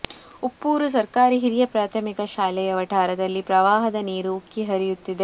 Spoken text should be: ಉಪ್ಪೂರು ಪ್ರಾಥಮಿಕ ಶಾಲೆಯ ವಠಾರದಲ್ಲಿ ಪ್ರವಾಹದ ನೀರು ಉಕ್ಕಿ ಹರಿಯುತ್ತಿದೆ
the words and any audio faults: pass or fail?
fail